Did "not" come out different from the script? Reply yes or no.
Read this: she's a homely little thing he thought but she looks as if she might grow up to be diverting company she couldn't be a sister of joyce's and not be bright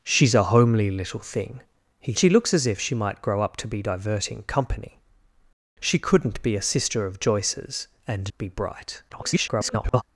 yes